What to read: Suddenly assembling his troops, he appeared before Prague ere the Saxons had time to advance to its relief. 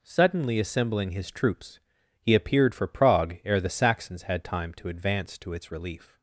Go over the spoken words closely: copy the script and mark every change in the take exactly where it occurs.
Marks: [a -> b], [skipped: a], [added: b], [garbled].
Suddenly assembling his troops, he appeared [before -> for] Prague ere the Saxons had time to advance to its relief.